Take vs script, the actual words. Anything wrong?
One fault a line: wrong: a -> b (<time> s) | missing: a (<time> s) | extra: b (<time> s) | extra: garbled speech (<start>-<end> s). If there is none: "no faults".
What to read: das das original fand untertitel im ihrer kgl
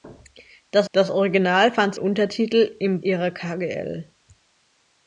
no faults